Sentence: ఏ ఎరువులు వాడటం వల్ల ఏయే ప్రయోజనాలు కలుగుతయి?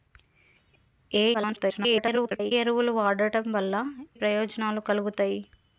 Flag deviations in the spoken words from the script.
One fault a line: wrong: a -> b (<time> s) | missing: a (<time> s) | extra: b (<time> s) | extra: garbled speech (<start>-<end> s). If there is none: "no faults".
extra: garbled speech (1.3-2.5 s)
missing: ఏయే (3.7 s)